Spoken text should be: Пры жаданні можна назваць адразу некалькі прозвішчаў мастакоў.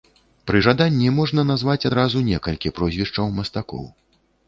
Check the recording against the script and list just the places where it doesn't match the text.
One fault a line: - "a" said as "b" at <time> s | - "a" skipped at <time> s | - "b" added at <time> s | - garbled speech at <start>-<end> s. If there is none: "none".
none